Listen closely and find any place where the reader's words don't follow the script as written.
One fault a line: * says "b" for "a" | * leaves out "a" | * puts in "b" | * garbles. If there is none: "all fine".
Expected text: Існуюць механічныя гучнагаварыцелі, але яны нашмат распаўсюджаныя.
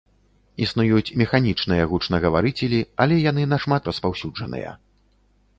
all fine